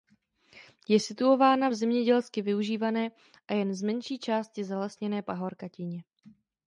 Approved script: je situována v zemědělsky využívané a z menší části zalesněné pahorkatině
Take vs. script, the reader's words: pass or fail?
fail